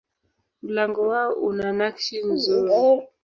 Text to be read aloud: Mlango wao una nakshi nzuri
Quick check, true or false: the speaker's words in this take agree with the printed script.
true